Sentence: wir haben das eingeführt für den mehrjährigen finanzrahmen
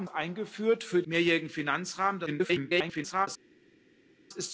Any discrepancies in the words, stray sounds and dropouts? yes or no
yes